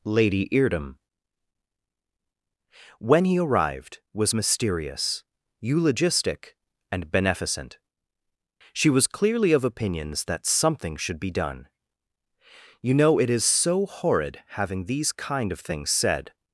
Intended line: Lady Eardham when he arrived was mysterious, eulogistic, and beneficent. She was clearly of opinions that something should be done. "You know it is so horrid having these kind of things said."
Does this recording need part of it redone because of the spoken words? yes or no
no